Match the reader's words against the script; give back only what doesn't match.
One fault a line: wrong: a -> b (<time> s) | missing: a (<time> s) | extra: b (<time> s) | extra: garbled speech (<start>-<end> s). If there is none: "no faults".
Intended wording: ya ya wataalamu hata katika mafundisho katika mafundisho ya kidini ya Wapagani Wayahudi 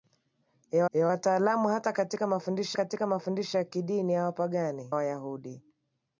no faults